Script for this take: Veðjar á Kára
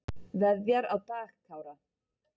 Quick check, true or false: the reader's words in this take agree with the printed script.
false